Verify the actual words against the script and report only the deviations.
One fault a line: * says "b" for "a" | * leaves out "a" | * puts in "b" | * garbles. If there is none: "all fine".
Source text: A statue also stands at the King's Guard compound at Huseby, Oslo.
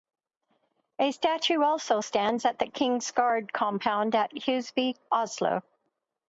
all fine